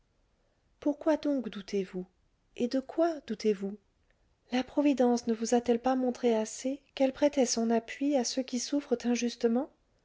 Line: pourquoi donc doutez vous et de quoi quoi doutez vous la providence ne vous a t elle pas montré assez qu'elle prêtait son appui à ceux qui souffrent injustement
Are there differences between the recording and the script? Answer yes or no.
yes